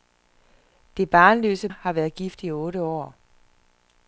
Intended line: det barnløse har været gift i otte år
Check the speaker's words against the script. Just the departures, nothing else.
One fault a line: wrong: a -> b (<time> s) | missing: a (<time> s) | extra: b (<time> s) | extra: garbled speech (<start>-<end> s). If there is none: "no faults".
no faults